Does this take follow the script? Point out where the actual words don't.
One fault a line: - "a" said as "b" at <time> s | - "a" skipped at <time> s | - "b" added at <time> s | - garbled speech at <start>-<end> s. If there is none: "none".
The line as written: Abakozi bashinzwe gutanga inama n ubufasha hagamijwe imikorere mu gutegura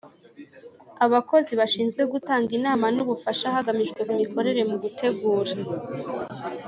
none